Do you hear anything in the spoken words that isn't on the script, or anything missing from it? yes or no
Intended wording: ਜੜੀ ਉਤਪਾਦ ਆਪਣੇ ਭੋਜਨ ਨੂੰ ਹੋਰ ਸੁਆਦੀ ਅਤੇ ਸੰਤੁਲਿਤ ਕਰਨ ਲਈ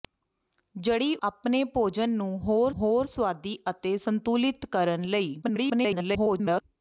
yes